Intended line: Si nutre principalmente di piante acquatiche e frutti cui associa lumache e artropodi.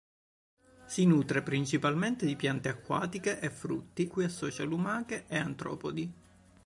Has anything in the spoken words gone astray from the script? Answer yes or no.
no